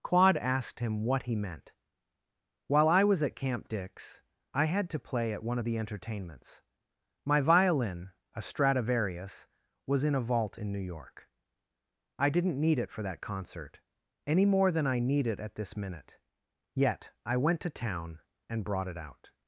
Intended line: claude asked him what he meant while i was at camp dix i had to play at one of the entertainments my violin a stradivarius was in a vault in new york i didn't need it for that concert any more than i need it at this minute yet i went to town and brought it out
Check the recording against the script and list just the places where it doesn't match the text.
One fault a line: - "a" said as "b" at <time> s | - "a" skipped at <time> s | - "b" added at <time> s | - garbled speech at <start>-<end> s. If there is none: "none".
none